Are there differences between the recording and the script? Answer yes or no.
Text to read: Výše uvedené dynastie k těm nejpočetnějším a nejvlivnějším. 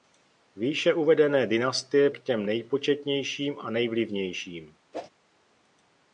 no